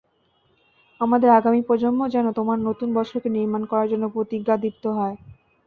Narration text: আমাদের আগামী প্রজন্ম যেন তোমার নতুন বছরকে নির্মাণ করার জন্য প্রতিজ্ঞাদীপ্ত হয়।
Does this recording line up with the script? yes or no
yes